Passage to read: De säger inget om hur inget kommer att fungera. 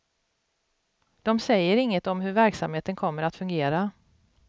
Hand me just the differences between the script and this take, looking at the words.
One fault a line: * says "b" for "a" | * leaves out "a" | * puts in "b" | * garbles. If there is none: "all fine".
* says "verksamheten" for "inget"